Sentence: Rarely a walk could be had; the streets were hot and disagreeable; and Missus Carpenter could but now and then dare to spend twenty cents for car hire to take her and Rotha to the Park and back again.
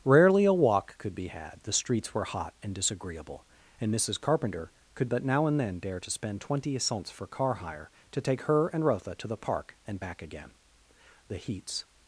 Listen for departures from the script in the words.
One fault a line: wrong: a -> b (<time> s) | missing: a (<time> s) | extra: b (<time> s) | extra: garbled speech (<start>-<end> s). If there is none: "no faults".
extra: The heats (11.3 s)